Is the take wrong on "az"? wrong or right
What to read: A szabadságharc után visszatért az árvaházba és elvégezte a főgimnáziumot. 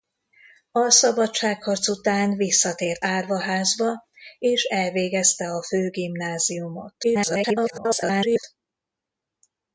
wrong